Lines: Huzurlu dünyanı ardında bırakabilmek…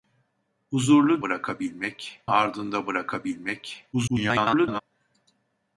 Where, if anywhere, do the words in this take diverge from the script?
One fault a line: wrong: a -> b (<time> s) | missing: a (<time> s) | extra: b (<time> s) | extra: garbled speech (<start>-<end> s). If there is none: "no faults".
wrong: dünyanı -> bırakabilmek (1.2 s)
extra: garbled speech (3.9-4.8 s)